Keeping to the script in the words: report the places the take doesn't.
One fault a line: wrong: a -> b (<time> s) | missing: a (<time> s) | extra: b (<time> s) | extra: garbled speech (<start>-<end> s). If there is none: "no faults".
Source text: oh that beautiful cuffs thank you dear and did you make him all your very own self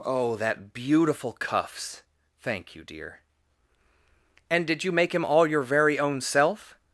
no faults